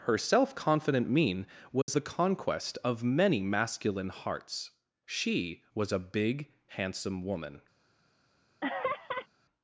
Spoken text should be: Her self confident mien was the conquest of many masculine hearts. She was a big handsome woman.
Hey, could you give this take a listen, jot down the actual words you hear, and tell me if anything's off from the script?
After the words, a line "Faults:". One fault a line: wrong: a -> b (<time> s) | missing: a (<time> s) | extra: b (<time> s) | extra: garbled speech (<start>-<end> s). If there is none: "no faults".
Her self confident mien was the conquest of many masculine hearts. She was a big handsome woman.
Faults:
no faults